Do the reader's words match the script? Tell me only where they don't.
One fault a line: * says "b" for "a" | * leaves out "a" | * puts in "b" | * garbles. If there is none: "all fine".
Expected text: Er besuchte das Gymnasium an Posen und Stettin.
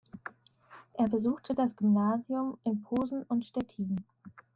* says "in" for "an"